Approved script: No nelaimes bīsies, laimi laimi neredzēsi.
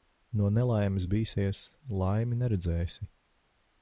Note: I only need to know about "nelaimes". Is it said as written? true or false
true